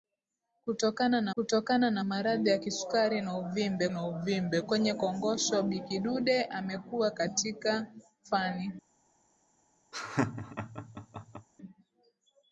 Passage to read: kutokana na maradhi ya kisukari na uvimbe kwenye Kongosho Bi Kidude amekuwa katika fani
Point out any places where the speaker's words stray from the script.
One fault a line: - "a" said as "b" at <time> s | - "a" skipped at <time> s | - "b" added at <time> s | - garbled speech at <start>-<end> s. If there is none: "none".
- "kutokana na" added at 1.3 s
- "na uvimbe" added at 3.9 s